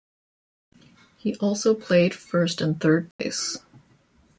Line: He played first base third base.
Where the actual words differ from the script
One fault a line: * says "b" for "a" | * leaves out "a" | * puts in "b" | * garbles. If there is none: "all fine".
* puts in "also"
* says "and" for "base"